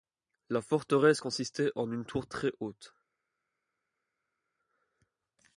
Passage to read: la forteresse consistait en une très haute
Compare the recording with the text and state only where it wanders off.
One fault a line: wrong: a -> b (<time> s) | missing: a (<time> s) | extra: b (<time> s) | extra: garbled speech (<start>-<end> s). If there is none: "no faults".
extra: tour (2.0 s)